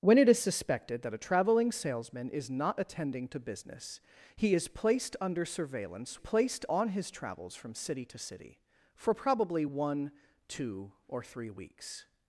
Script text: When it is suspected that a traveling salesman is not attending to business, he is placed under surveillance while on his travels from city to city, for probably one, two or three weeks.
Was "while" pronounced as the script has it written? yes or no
no